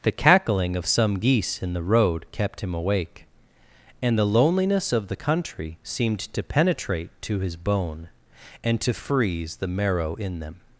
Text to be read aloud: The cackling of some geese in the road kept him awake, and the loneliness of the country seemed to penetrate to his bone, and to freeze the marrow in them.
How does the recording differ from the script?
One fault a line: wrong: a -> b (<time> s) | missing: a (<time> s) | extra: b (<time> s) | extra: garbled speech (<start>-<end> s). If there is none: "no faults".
no faults